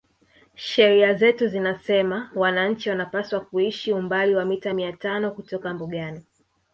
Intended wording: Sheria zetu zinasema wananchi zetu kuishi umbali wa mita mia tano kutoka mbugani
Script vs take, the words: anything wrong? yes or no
yes